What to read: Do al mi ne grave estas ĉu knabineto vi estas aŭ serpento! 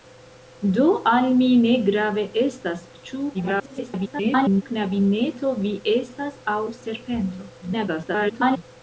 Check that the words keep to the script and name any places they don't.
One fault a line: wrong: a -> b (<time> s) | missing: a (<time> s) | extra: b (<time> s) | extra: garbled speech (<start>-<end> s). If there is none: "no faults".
extra: garbled speech (3.3-4.6 s)
extra: garbled speech (7.6-8.6 s)